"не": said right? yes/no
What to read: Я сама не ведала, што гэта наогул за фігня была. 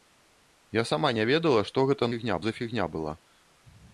yes